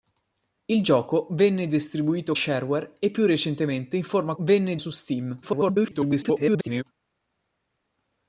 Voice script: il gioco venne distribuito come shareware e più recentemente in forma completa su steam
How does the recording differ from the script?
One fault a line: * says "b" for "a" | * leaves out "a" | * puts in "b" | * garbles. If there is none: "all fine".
* leaves out "come"
* says "venne" for "completa"
* garbles